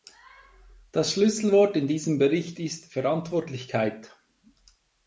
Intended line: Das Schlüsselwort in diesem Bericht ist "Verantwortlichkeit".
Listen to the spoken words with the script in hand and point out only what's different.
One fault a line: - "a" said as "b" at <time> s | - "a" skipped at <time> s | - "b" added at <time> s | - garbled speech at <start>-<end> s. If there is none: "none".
none